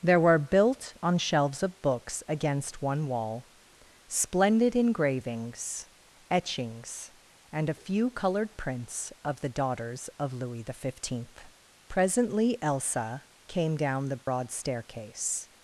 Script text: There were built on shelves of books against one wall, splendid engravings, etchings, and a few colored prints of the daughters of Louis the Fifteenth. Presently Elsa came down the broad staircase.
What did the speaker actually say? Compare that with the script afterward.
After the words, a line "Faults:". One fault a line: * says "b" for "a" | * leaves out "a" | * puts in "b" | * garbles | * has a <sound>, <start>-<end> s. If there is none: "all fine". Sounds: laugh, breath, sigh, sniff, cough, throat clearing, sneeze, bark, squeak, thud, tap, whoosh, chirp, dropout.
There were built on shelves of books against one wall, splendid engravings, etchings, and a few colored prints of the daughters of Louis the Fifteenth. Presently Elsa came down the broad staircase.
Faults:
* has a dropout, 14.2-14.3 s